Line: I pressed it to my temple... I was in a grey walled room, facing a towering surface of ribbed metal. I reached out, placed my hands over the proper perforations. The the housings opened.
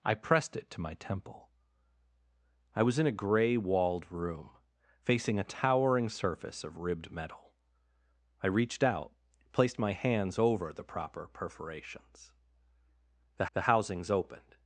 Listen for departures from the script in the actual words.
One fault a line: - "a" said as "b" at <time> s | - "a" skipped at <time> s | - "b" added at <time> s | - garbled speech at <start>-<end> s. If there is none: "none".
none